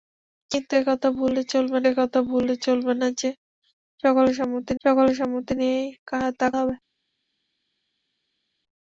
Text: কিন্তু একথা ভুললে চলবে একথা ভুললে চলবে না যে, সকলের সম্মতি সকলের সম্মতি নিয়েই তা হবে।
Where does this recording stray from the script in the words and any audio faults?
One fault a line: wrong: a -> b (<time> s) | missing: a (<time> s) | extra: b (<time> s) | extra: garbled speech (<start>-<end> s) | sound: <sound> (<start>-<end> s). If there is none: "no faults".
no faults